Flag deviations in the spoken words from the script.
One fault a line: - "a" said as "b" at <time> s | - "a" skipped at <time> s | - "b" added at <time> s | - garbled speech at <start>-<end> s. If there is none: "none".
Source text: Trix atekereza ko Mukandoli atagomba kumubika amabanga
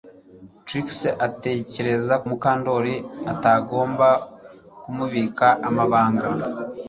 - "ko" skipped at 2.1 s